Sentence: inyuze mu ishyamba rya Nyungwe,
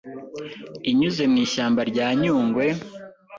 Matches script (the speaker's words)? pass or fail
pass